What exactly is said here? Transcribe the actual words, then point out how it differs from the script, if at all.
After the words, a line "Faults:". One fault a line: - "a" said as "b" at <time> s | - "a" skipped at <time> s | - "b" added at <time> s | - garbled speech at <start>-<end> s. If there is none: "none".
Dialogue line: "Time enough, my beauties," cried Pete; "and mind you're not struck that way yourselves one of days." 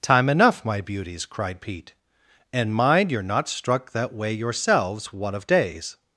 "Time enough, my beauties," cried Pete; "and mind you're not struck that way yourselves one of days."
Faults:
none